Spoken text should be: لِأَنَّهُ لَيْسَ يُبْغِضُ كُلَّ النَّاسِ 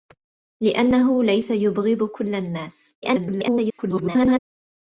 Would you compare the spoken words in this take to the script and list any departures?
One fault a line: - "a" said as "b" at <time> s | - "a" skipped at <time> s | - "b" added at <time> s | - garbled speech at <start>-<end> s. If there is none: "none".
- garbled speech at 3.0-4.4 s